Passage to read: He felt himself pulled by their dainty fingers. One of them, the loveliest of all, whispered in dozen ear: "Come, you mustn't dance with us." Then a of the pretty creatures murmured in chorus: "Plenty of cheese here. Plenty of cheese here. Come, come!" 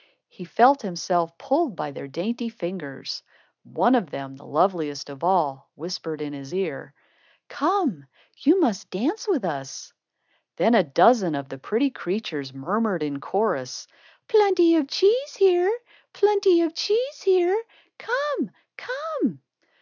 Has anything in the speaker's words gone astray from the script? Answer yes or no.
yes